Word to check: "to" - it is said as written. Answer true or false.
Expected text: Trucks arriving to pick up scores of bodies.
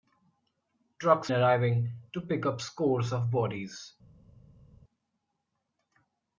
true